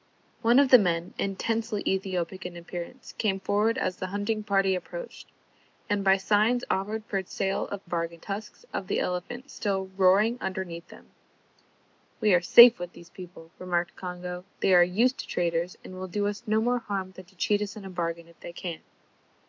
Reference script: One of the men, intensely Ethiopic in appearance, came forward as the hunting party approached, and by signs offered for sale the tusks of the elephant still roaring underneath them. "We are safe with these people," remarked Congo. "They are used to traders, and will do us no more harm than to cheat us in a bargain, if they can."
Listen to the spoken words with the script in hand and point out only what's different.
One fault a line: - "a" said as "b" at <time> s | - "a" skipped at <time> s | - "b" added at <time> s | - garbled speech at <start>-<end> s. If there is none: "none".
- "the" said as "bargain" at 7.8 s